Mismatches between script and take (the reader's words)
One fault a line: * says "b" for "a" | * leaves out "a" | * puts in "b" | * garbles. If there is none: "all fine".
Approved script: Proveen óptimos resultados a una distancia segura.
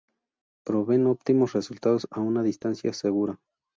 all fine